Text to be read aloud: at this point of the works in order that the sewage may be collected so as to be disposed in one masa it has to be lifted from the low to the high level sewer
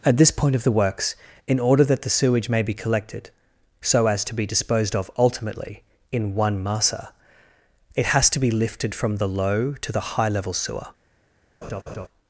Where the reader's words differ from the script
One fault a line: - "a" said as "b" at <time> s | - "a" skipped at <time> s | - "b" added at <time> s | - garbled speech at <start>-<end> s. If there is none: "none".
- "of ultimately" added at 5.0 s